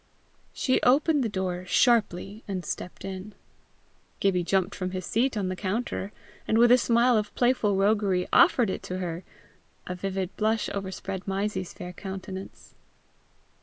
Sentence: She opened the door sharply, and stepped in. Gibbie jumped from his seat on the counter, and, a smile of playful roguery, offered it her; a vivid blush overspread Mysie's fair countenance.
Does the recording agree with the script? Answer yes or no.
no